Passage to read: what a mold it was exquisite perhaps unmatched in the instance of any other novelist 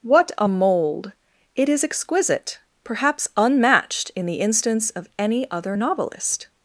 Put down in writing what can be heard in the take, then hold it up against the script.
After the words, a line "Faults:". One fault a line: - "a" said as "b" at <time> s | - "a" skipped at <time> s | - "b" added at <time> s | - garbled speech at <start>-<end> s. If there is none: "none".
what a mold it is exquisite perhaps unmatched in the instance of any other novelist
Faults:
- "was" said as "is" at 1.7 s